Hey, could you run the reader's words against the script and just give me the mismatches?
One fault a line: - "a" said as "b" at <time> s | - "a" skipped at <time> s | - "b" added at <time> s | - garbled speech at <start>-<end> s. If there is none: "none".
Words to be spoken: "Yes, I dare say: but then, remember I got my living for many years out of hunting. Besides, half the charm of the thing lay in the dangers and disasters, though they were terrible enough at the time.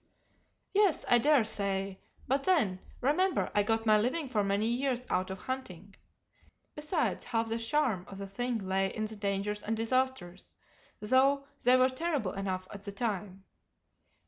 none